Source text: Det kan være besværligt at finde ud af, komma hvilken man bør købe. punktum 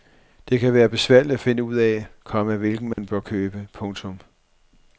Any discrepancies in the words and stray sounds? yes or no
yes